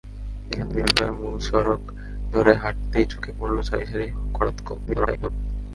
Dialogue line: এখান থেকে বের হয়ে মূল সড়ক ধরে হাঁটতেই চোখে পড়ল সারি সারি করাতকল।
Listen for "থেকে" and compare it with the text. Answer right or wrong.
wrong